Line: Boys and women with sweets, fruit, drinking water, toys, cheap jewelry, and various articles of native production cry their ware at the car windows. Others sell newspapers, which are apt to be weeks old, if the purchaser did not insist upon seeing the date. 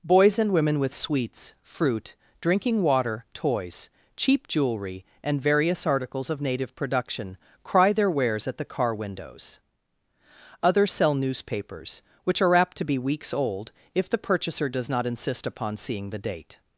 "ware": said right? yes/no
no